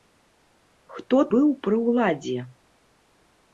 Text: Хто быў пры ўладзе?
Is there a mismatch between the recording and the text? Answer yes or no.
no